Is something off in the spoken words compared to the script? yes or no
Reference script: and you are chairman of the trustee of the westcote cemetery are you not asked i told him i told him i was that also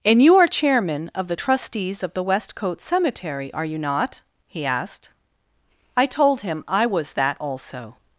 yes